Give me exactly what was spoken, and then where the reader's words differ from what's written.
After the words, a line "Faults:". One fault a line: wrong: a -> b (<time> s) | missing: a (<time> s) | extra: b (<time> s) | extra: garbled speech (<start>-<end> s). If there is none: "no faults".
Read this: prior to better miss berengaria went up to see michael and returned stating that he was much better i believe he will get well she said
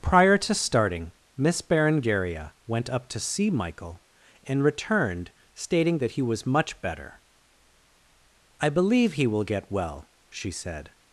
prior to starting miss berengaria went up to see michael and returned stating that he was much better i believe he will get well she said
Faults:
wrong: better -> starting (0.5 s)